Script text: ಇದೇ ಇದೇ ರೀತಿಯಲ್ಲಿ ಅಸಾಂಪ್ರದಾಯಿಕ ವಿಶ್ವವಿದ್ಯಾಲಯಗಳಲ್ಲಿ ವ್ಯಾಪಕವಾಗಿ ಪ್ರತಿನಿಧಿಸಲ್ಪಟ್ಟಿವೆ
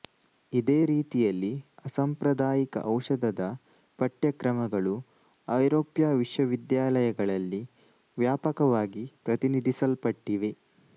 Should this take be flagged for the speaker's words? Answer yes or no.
yes